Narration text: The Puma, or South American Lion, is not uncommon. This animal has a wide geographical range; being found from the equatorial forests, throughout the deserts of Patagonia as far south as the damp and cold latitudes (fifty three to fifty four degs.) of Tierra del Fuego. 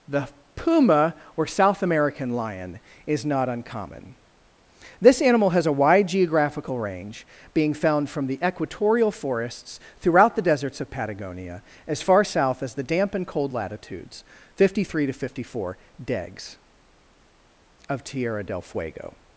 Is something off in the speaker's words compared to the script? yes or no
no